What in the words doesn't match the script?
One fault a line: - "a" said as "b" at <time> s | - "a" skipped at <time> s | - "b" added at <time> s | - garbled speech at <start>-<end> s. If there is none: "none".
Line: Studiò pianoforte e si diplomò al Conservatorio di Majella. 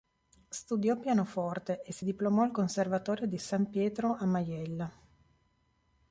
- "San Pietro a" added at 3.4 s